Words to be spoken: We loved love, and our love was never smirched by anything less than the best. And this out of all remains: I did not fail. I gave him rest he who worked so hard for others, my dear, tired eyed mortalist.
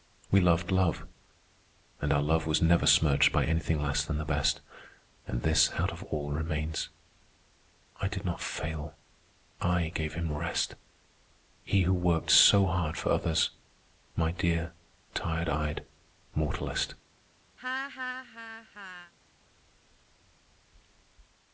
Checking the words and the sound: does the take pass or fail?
fail